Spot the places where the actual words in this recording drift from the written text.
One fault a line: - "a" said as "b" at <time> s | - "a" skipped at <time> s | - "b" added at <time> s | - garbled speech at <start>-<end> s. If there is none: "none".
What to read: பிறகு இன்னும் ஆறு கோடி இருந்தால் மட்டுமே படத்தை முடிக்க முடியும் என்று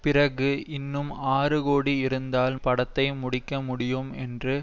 - "மட்டுமே" skipped at 2.5 s